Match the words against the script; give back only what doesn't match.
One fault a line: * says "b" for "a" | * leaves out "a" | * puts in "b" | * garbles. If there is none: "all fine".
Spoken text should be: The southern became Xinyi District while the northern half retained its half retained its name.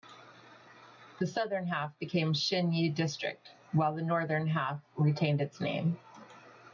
* puts in "half"
* leaves out "half retained its"